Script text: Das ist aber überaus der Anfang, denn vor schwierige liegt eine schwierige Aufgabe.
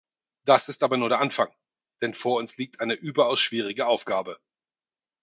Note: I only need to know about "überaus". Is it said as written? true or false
false